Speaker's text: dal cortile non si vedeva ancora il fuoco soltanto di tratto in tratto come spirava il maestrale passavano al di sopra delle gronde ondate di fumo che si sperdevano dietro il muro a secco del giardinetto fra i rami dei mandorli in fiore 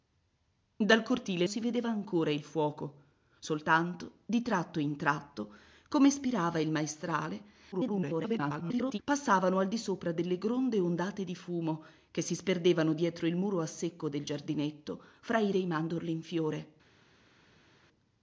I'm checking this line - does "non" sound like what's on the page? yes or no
no